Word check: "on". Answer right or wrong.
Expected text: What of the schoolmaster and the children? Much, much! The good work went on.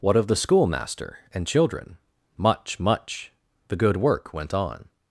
right